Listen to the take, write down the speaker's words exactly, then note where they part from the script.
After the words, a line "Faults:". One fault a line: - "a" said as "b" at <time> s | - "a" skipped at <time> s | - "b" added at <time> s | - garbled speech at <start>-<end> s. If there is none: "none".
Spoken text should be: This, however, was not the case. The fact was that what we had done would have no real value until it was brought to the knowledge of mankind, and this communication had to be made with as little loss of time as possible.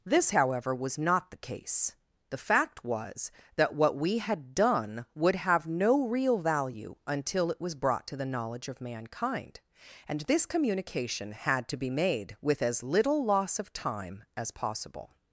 This, however, was not the case. The fact was that what we had done would have no real value until it was brought to the knowledge of mankind, and this communication had to be made with as little loss of time as possible.
Faults:
none